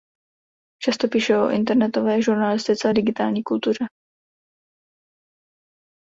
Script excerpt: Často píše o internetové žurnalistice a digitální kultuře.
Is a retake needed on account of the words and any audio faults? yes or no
no